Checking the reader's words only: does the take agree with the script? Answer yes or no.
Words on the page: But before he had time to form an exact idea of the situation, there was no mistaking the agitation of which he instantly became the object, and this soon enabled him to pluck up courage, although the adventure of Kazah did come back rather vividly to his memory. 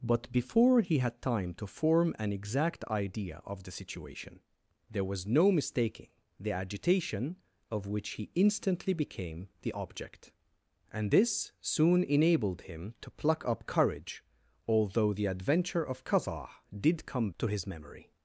no